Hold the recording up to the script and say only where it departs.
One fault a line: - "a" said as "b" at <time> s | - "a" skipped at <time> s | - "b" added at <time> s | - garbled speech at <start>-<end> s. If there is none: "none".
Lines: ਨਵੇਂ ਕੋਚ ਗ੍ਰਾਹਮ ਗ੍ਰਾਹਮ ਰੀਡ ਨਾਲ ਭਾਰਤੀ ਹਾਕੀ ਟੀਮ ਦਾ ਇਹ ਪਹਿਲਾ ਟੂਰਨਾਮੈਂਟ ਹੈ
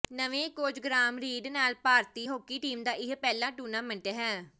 - "ਗ੍ਰਾਹਮ" skipped at 1.2 s